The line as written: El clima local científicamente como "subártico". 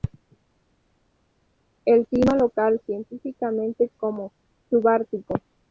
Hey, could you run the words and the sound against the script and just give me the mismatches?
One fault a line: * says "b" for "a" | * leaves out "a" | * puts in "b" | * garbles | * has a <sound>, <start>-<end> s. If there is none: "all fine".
all fine